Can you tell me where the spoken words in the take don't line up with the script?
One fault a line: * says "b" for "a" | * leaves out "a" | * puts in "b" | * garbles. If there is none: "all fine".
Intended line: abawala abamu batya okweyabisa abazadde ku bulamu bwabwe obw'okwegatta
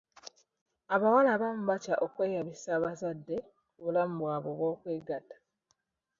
all fine